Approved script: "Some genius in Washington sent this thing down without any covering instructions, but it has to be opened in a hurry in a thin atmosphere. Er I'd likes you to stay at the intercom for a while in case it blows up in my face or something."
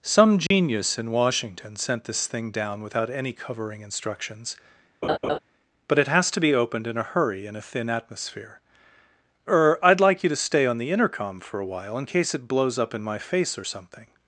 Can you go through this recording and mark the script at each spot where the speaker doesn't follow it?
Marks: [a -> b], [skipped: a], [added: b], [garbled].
"Some genius in Washington sent this thing down without any covering instructions, but it has to be opened in a hurry in a thin atmosphere. Er I'd [likes -> like] you to stay [at -> on] the intercom for a while in case it blows up in my face or something."